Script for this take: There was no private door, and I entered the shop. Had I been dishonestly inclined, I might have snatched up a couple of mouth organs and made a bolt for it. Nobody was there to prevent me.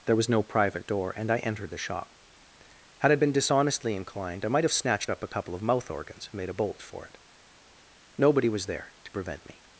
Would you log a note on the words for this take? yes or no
no